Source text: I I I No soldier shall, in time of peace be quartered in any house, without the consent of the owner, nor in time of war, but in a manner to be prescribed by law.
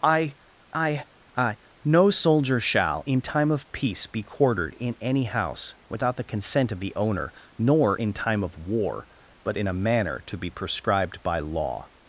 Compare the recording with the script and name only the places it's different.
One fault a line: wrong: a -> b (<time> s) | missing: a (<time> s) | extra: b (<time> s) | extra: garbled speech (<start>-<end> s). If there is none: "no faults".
no faults